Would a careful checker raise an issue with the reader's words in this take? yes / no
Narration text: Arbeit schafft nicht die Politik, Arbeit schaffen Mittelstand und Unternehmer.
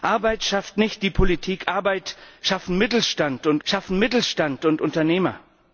yes